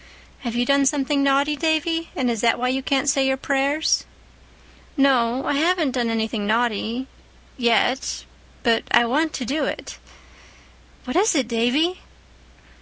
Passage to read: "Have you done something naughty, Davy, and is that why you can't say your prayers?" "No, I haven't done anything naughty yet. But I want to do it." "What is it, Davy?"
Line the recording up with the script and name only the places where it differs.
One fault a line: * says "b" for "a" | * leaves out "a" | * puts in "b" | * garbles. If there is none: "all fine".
all fine